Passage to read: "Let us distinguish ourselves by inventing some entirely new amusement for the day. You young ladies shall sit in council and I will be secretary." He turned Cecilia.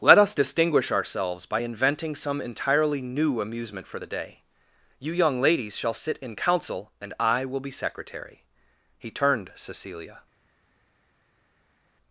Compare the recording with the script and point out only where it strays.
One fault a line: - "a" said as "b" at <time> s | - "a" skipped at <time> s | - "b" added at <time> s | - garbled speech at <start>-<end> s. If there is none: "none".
none